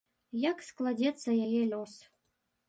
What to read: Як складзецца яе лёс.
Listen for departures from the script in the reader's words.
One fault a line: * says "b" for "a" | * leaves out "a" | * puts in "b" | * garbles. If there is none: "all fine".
all fine